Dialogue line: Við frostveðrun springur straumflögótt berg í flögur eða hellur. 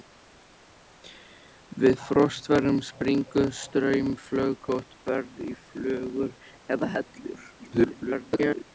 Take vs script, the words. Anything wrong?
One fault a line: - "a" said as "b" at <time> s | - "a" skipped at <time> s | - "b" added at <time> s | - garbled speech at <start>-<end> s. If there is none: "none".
- garbled speech at 7.6-8.6 s